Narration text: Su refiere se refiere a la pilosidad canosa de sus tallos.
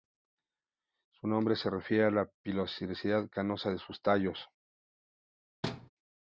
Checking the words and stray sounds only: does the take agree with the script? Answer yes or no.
no